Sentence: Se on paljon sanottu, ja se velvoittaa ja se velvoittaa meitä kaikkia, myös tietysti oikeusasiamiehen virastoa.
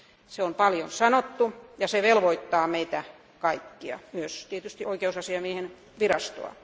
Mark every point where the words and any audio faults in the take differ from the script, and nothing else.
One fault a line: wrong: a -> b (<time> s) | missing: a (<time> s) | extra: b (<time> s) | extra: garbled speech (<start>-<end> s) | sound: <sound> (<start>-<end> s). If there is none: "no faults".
missing: ja se velvoittaa (2.7 s)